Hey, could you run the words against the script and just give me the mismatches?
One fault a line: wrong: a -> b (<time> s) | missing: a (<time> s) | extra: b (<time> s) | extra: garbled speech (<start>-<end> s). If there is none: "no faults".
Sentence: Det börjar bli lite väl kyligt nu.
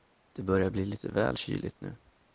no faults